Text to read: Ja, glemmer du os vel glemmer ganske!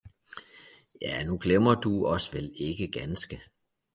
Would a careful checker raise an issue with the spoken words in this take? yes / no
yes